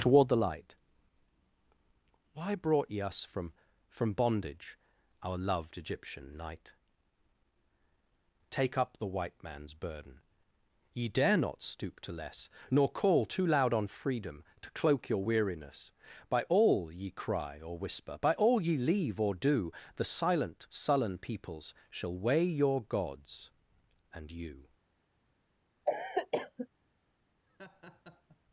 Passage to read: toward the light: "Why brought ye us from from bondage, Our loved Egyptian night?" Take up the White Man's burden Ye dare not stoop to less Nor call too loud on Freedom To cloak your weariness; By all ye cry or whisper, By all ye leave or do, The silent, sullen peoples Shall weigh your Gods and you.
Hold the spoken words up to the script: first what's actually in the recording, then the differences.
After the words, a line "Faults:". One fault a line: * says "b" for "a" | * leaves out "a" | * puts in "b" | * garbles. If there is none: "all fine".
toward the light: "Why brought ye us from from bondage, Our loved Egyptian night?" Take up the White Man's burden Ye dare not stoop to less Nor call too loud on Freedom To cloak your weariness; By all ye cry or whisper, By all ye leave or do, The silent, sullen peoples Shall weigh your Gods and you.
Faults:
all fine